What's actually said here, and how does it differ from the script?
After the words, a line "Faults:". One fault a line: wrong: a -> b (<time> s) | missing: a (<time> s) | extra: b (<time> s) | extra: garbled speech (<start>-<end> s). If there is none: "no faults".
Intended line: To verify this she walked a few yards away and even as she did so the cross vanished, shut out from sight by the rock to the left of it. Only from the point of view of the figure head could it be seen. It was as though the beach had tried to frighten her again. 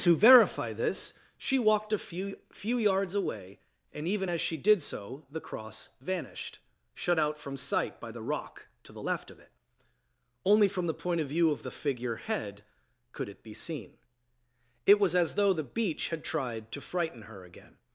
To verify this she walked a few few yards away and even as she did so the cross vanished, shut out from sight by the rock to the left of it. Only from the point of view of the figure head could it be seen. It was as though the beach had tried to frighten her again.
Faults:
extra: few (2.5 s)